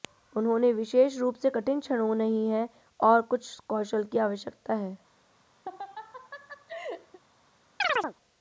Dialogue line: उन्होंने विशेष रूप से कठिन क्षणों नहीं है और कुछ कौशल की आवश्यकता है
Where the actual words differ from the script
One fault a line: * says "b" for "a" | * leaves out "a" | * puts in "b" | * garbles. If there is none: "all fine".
all fine